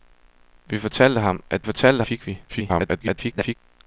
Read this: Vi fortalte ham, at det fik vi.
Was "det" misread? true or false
true